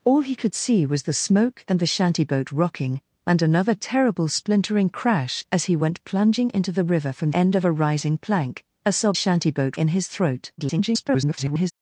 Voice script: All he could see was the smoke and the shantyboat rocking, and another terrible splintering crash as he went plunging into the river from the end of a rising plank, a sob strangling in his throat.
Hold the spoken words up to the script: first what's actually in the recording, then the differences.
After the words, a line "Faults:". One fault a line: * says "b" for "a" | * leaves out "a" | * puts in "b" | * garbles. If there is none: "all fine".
All he could see was the smoke and the shantyboat rocking, and another terrible splintering crash as he went plunging into the river from end of a rising plank, a sob shantyboat in his throat. [garbled]
Faults:
* leaves out "the"
* says "shantyboat" for "strangling"
* garbles